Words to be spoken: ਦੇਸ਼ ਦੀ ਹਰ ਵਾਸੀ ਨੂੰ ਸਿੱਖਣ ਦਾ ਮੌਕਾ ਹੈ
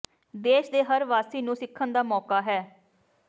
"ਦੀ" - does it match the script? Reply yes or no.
no